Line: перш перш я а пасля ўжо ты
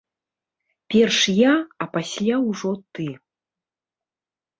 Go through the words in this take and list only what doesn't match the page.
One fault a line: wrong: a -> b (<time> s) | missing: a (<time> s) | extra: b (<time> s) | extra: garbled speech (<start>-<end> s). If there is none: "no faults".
missing: перш (1.2 s)